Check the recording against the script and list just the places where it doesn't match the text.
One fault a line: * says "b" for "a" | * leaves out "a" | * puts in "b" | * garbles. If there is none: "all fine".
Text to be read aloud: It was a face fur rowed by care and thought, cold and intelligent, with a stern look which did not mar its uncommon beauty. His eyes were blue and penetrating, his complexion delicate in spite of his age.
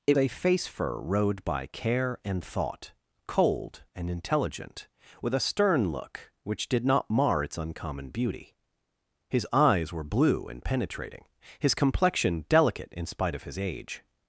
* leaves out "was"